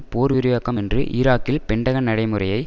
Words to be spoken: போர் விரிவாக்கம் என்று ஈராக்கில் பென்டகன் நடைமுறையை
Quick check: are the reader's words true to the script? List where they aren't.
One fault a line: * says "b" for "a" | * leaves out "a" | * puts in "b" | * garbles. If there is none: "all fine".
all fine